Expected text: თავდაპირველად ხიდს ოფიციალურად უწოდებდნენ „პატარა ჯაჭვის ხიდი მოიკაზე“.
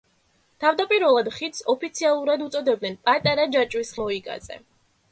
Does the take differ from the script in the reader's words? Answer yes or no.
yes